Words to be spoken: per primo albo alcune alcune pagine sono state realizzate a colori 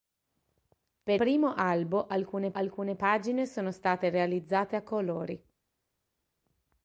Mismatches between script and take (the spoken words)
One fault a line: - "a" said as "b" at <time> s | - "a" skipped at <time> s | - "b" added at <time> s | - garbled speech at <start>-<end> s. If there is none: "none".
none